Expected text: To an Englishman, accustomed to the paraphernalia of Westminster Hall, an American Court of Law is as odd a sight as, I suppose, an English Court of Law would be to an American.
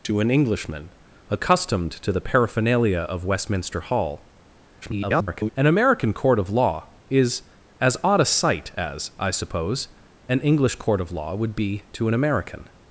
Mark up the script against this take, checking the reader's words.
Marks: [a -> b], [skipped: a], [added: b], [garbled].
To an Englishman, accustomed to the paraphernalia of Westminster Hall, [garbled] an American Court of Law is as odd a sight as, I suppose, an English Court of Law would be to an American.